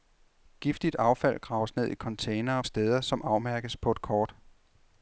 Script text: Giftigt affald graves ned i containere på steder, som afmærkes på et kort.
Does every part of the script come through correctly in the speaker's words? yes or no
no